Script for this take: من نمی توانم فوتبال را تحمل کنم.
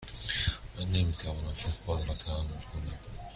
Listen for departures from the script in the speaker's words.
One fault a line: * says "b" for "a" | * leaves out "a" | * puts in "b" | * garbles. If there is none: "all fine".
all fine